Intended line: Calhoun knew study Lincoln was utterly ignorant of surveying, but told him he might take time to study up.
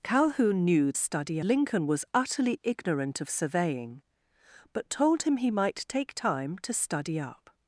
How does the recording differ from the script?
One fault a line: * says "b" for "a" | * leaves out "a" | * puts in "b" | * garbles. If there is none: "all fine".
all fine